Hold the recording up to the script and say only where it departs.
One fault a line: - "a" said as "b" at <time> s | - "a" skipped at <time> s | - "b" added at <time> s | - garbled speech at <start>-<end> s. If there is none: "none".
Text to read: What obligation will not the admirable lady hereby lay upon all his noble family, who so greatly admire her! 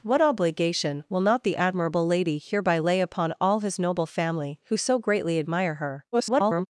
- garbled speech at 6.1-6.7 s